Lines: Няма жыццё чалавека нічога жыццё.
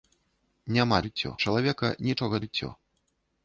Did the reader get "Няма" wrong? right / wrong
right